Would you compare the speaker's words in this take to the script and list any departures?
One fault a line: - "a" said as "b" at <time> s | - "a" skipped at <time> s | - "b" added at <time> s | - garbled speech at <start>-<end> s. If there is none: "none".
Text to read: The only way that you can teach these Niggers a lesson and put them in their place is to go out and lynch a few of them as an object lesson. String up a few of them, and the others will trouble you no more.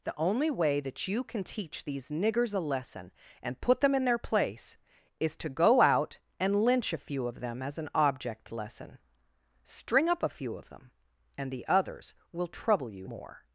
- "no" skipped at 13.1 s